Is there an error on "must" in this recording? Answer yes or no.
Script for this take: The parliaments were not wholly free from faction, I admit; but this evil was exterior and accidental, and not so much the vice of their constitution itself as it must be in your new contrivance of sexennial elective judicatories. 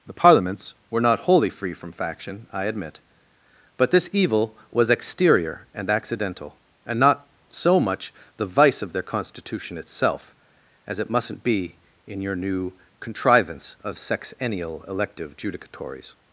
yes